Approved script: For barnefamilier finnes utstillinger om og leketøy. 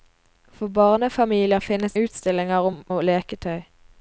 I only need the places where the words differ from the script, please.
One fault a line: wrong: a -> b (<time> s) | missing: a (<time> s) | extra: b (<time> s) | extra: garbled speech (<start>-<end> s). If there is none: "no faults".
no faults